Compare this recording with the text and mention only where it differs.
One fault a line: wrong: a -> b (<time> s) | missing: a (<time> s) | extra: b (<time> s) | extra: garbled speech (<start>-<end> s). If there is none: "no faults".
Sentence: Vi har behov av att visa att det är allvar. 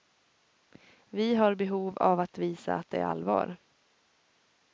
no faults